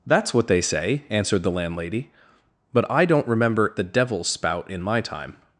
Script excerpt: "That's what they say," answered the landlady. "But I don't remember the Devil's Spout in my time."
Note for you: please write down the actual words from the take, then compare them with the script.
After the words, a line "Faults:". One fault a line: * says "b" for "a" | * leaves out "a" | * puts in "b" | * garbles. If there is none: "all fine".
"That's what they say," answered the landlady. "But I don't remember the Devil's Spout in my time."
Faults:
all fine